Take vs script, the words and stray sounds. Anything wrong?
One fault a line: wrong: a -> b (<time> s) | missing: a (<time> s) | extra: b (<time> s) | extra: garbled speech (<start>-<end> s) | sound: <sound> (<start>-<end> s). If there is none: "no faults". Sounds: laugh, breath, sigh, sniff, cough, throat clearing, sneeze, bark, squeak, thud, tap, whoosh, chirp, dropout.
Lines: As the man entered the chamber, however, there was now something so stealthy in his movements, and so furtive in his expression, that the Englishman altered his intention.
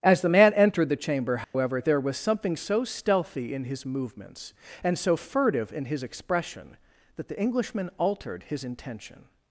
sound: dropout (1.4-1.5 s)
missing: now (2.2 s)